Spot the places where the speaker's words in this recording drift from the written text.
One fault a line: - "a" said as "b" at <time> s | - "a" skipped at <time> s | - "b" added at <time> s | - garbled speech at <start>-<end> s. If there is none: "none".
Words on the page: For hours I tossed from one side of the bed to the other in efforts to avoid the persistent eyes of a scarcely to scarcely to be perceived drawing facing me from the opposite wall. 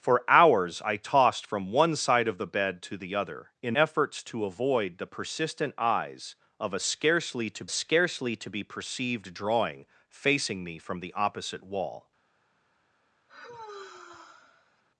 none